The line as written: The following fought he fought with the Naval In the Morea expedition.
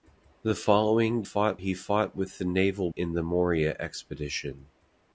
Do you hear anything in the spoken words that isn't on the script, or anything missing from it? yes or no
no